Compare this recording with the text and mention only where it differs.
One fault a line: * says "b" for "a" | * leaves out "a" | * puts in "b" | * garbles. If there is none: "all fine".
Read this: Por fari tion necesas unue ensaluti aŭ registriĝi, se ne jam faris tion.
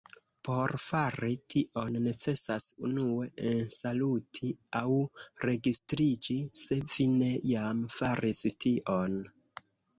* puts in "vi"